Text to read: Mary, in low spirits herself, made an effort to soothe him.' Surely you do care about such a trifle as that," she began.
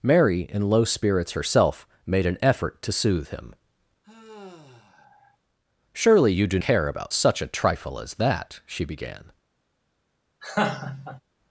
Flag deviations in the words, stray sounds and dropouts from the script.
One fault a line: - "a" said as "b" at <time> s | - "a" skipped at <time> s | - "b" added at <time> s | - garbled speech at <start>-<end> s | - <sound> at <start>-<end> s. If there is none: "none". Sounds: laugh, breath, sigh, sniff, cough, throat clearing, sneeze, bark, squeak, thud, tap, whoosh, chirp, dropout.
- sigh at 4.0-5.4 s
- laugh at 10.4-11.2 s